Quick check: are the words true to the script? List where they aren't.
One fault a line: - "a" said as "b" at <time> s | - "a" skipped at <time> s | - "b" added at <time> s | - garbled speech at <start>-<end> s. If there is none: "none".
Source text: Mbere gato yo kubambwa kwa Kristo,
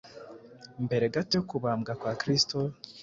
none